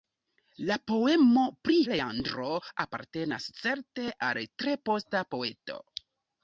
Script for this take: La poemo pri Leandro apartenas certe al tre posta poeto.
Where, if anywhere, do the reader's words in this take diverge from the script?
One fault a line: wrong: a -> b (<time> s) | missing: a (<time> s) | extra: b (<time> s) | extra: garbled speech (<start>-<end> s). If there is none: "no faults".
no faults